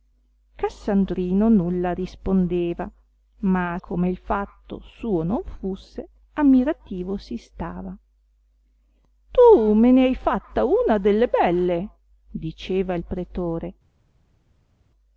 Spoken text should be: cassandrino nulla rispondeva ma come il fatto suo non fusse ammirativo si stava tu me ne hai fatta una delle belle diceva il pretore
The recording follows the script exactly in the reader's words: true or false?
true